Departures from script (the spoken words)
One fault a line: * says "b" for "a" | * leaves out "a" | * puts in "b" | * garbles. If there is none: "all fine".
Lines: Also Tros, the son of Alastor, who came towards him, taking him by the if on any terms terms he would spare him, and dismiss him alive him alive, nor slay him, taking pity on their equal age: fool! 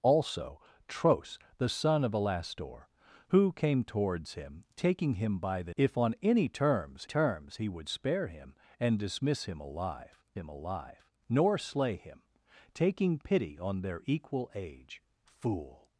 all fine